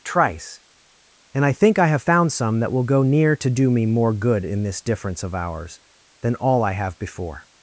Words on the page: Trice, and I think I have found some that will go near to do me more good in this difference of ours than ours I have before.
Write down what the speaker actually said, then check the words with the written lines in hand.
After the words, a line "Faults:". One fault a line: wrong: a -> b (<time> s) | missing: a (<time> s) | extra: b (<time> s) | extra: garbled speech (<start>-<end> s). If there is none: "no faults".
Trice, and I think I have found some that will go near to do me more good in this difference of ours than all I have before.
Faults:
wrong: ours -> all (6.4 s)